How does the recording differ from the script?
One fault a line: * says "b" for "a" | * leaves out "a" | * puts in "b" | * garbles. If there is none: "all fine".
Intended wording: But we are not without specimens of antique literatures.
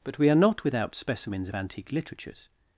all fine